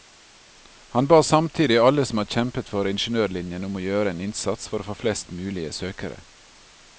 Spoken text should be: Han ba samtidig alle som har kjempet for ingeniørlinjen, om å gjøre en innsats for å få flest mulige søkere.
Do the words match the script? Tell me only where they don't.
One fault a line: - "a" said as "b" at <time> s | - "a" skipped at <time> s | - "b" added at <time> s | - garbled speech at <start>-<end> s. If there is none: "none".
none